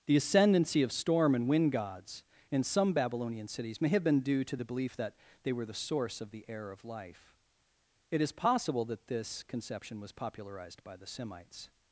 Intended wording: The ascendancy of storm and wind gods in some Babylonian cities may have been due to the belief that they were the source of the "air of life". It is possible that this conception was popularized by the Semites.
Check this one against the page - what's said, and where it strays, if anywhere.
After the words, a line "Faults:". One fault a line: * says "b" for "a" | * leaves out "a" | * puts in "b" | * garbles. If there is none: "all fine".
The ascendancy of storm and wind gods in some Babylonian cities may have been due to the belief that they were the source of the "air of life". It is possible that this conception was popularized by the Semites.
Faults:
all fine